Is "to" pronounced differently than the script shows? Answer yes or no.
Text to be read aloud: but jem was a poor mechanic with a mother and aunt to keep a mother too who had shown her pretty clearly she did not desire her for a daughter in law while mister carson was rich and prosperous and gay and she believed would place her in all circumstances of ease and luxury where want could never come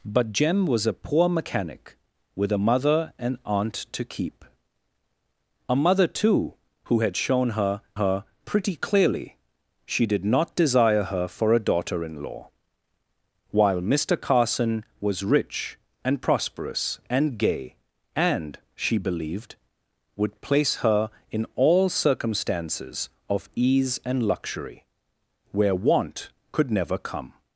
no